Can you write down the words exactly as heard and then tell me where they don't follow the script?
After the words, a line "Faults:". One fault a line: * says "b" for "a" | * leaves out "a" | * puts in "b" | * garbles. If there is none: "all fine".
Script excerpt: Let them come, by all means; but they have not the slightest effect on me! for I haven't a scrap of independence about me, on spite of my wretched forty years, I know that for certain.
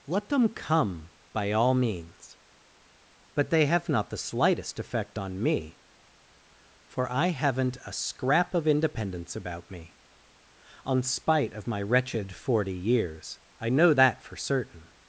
Let them come, by all means; but they have not the slightest effect on me! for I haven't a scrap of independence about me, on spite of my wretched forty years, I know that for certain.
Faults:
all fine